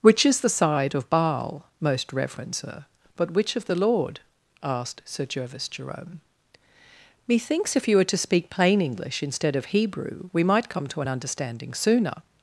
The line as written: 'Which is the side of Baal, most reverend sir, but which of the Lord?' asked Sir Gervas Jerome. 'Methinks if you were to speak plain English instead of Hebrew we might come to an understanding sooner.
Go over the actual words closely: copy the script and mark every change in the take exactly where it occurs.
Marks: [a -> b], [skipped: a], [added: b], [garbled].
'Which is the side of Baal, most reverend sir, but which of the Lord?' asked Sir Gervas Jerome. 'Methinks if you were to speak plain English instead of Hebrew we might come to an understanding sooner.